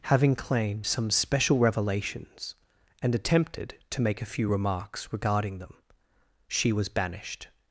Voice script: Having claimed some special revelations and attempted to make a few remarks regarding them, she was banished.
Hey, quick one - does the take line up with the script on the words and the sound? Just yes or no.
yes